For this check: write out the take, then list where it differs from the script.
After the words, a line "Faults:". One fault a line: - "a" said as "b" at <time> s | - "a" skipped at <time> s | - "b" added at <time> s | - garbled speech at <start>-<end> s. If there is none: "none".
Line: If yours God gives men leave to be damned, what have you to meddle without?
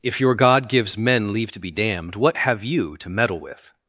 If your God gives men leave to be damned, what have you to meddle with?
Faults:
- "yours" said as "your" at 0.2 s
- "without" said as "with" at 3.4 s